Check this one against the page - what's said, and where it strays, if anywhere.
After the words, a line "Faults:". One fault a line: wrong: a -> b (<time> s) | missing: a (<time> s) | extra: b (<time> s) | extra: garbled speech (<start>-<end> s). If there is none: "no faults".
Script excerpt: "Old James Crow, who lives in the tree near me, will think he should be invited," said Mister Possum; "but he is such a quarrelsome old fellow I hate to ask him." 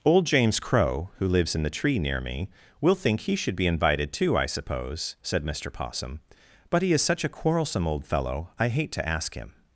"Old James Crow, who lives in the tree near me, will think he should be invited, too, I suppose," said Mister Possum; "but he is such a quarrelsome old fellow I hate to ask him."
Faults:
extra: too I suppose (4.1 s)